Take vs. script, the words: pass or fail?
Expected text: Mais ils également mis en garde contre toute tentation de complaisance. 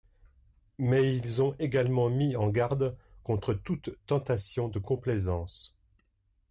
fail